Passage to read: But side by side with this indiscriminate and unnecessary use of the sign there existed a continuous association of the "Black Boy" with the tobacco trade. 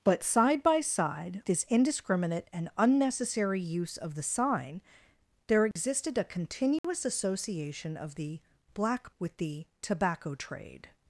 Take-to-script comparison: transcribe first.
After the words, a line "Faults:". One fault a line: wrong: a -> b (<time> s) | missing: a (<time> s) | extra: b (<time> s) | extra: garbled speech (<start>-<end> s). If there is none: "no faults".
But side by side this indiscriminate and unnecessary use of the sign there existed a continuous association of the "Black" With the tobacco trade.
Faults:
missing: with (1.4 s)
missing: Boy (9.1 s)